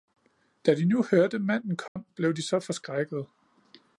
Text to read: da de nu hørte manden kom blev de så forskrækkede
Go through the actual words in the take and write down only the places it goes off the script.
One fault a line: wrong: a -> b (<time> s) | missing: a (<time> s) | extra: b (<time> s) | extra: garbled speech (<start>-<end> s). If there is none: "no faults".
no faults